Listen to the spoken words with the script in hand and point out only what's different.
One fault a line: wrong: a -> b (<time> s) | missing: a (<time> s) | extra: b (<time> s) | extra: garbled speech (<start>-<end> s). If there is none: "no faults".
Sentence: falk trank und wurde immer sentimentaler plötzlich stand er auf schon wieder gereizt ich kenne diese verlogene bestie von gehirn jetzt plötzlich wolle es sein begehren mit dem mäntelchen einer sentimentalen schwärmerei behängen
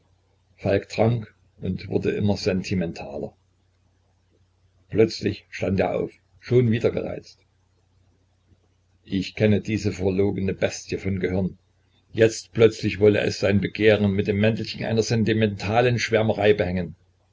no faults